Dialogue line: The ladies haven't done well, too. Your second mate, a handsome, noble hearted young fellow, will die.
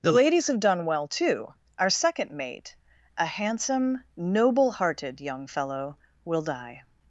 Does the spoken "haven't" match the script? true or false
false